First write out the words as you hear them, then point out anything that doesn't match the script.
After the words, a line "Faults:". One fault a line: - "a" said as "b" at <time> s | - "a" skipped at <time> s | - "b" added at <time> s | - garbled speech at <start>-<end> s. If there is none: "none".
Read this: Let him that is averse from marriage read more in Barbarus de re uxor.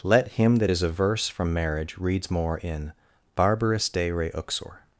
Let him that is averse from marriage reads more in Barbarus de re uxor.
Faults:
- "read" said as "reads" at 2.0 s